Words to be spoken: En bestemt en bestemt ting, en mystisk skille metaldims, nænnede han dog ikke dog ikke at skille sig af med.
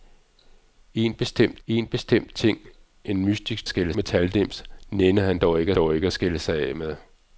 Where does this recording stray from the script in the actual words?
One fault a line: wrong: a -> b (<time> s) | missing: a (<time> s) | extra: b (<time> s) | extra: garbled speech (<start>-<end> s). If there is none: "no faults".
no faults